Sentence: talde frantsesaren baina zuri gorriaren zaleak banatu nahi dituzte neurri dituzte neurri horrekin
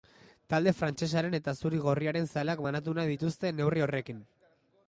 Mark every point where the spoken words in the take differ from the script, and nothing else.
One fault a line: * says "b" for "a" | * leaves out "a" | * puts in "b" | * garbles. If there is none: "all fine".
* says "eta" for "baina"
* leaves out "dituzte neurri"